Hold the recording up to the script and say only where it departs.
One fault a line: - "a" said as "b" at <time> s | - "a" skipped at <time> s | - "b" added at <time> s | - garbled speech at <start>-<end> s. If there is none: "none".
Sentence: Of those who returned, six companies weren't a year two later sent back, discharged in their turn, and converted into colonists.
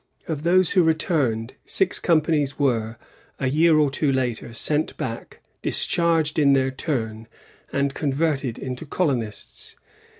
- "weren't" said as "were" at 2.6 s
- "or" added at 3.8 s